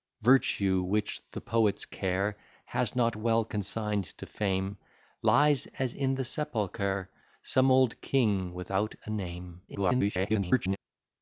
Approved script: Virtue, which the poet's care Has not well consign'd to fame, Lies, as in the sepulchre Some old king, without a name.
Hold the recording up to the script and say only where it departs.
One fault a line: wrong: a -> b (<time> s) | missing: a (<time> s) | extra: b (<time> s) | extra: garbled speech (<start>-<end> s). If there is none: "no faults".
extra: garbled speech (9.7-10.8 s)